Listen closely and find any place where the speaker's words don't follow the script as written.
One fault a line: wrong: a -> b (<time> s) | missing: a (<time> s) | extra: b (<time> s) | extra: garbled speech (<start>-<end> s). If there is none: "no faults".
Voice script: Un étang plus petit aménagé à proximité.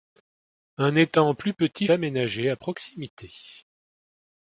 no faults